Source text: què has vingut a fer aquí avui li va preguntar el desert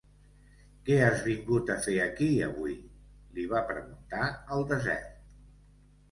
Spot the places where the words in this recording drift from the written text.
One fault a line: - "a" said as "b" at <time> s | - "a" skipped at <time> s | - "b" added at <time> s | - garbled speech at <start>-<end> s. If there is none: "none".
none